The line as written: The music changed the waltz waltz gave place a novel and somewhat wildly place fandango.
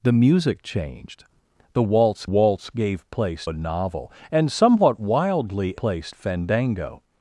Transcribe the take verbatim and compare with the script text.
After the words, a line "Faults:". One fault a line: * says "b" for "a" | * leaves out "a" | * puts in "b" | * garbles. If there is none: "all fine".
The music changed the waltz waltz gave place a novel and somewhat wildly place fandango.
Faults:
all fine